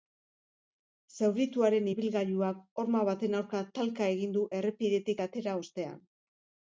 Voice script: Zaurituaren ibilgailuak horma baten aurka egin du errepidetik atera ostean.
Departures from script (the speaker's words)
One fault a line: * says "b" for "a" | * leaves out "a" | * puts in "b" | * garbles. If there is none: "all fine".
* puts in "talka"